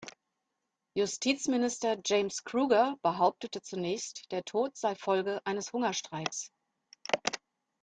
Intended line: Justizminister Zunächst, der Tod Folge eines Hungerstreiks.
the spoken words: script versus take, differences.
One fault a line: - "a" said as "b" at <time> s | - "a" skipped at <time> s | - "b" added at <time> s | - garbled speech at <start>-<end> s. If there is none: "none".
- "James Kruger behauptete" added at 2.0 s
- "sei" added at 4.8 s